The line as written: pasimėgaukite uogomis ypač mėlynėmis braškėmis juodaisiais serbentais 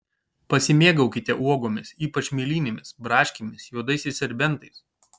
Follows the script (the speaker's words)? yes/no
yes